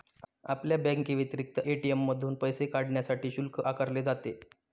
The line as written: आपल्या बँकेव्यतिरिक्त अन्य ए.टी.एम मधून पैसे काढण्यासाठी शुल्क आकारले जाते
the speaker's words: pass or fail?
fail